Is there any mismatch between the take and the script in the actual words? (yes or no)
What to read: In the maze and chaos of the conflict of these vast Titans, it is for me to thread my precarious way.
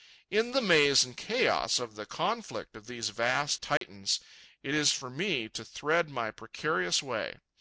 no